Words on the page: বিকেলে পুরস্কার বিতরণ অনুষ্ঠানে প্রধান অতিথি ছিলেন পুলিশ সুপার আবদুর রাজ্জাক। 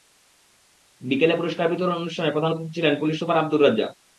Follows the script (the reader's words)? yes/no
yes